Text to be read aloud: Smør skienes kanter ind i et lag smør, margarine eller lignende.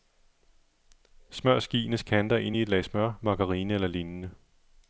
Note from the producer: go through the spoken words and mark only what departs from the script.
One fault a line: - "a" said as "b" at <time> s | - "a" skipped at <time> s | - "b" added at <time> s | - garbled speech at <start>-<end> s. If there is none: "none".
none